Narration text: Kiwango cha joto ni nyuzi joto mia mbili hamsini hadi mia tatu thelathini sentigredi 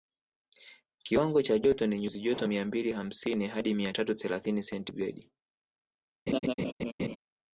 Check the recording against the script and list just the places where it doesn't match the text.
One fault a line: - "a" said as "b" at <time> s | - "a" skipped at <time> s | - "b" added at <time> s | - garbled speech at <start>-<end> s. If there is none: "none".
none